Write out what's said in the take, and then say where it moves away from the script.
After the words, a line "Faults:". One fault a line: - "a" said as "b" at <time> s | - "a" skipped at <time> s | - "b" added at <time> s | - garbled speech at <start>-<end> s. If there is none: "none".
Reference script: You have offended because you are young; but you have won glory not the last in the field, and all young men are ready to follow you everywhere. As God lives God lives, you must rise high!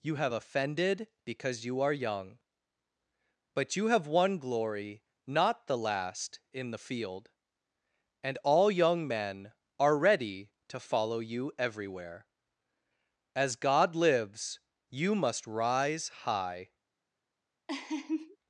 You have offended because you are young; but you have won glory not the last in the field, and all young men are ready to follow you everywhere. As God lives, you must rise high!
Faults:
- "God lives" skipped at 14.6 s